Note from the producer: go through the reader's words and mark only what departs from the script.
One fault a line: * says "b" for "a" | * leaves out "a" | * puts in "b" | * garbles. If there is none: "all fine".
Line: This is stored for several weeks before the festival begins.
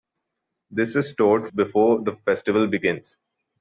* leaves out "for several weeks"